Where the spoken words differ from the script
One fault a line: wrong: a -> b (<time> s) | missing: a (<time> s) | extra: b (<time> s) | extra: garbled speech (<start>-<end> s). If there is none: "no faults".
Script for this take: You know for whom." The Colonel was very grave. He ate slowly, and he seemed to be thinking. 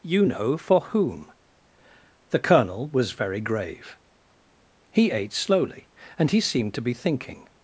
no faults